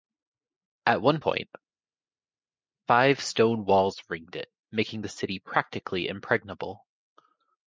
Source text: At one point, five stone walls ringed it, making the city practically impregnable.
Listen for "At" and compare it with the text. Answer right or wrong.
right